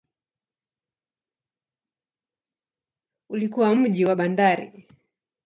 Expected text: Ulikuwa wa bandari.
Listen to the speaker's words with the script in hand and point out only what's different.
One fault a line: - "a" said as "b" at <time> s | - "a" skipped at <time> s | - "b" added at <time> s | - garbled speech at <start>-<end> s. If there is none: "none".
- "mji" added at 3.7 s